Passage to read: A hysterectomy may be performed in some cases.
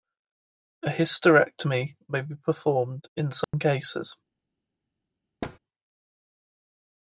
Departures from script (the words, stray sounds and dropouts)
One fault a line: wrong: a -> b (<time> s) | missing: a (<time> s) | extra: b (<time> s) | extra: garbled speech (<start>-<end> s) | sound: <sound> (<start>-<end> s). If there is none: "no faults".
sound: dropout (3.4-3.5 s)
sound: thud (5.4-5.6 s)